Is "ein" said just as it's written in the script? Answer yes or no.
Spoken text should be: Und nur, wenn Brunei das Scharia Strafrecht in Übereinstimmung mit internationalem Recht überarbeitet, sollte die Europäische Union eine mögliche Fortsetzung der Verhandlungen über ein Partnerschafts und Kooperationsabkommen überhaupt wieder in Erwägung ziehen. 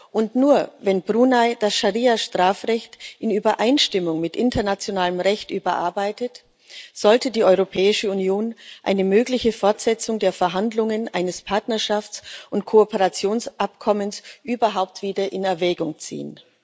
yes